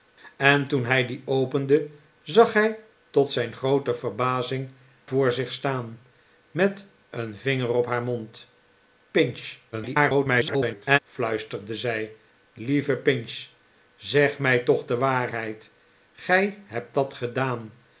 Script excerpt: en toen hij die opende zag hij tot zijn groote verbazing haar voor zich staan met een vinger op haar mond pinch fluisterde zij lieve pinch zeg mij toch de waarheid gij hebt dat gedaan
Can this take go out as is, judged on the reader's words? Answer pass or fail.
fail